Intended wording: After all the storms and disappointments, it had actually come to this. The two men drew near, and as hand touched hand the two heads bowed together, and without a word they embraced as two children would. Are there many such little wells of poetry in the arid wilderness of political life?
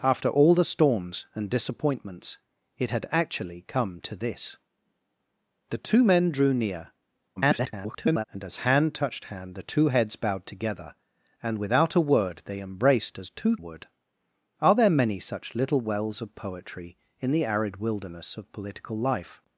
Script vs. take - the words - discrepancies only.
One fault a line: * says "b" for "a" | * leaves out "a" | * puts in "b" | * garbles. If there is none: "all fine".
* garbles
* leaves out "children"